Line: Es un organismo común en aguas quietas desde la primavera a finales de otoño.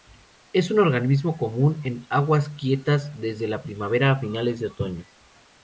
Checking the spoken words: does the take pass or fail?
pass